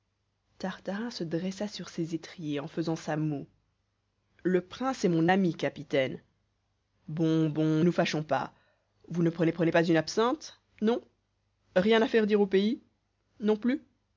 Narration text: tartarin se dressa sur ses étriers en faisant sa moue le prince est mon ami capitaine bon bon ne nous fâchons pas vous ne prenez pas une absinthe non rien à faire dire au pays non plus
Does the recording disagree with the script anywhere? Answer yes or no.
yes